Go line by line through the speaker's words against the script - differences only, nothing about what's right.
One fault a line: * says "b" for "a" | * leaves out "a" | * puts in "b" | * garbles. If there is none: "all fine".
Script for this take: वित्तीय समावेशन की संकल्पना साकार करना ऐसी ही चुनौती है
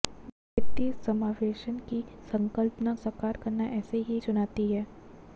all fine